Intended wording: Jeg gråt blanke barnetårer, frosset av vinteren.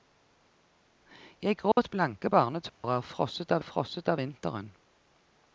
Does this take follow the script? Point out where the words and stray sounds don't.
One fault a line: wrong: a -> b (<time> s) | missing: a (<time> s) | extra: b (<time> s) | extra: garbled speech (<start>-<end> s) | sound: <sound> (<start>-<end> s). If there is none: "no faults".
sound: dropout (1.7-1.8 s)
sound: dropout (2.7-2.8 s)
extra: frosset av (3.6 s)